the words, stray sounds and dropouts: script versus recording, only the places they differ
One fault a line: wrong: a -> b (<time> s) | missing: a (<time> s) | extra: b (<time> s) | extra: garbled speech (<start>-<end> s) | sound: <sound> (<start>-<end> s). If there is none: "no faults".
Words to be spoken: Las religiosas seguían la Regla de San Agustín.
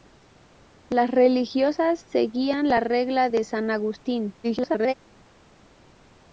extra: garbled speech (4.4-4.9 s)